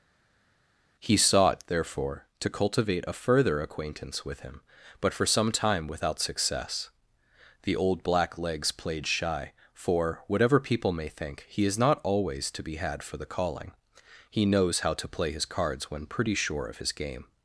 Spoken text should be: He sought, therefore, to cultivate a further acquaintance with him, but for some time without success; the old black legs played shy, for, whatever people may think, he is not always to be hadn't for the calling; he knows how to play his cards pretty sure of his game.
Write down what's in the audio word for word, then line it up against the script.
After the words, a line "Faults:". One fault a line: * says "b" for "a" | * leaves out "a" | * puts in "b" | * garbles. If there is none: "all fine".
He sought, therefore, to cultivate a further acquaintance with him, but for some time without success; the old black legs played shy, for, whatever people may think, he is not always to be had for the calling; he knows how to play his cards when pretty sure of his game.
Faults:
* says "had" for "hadn't"
* puts in "when"